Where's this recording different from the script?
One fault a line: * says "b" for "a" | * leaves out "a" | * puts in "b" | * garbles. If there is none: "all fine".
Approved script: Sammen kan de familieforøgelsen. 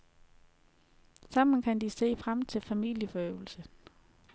* puts in "se frem til"